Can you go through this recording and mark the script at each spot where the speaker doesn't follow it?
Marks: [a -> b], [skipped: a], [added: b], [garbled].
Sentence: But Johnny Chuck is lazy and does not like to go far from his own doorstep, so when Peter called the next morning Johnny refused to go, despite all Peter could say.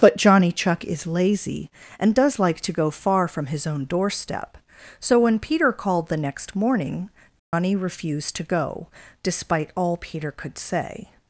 But Johnny Chuck is lazy and does [skipped: not] like to go far from his own doorstep, so when Peter called the next morning Johnny refused to go, despite all Peter could say.